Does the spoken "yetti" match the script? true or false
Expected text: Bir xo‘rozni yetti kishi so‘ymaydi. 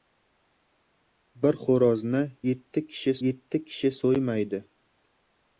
true